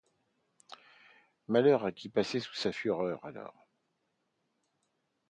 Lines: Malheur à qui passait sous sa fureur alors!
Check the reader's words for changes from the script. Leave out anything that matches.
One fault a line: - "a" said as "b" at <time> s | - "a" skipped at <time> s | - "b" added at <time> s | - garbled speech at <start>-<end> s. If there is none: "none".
none